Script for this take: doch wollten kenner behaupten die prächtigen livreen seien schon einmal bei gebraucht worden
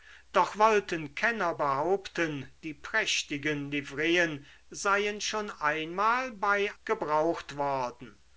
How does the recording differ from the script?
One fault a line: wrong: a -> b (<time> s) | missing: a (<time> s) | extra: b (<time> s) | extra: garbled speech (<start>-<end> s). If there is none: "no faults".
no faults